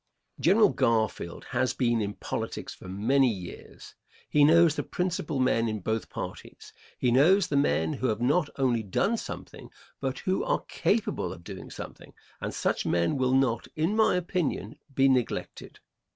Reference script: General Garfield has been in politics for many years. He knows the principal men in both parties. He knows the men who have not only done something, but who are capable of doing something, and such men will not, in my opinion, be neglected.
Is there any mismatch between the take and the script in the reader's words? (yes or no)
no